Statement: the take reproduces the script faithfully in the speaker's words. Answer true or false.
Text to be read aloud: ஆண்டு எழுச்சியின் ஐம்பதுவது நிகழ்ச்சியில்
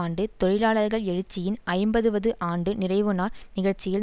false